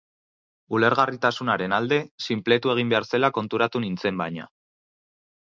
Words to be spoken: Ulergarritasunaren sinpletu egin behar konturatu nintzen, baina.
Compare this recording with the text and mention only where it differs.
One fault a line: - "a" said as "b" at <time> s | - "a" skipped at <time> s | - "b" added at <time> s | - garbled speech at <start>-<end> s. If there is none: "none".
- "alde" added at 1.8 s
- "zela" added at 3.1 s